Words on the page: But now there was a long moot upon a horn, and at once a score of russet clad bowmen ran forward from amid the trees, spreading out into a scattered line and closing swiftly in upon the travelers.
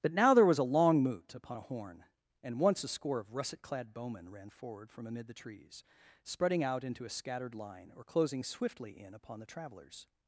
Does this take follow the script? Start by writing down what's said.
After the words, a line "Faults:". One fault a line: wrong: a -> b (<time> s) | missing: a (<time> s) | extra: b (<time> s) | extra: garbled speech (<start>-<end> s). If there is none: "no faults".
But now there was a long moot upon a horn, and once a score of russet clad bowmen ran forward from amid the trees, spreading out into a scattered line or closing swiftly in upon the travelers.
Faults:
missing: at (2.6 s)
wrong: and -> or (7.9 s)